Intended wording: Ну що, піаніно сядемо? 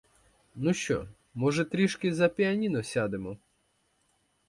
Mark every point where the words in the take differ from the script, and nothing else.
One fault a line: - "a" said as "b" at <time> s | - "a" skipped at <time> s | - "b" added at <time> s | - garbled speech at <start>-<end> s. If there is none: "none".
- "може трішки за" added at 1.3 s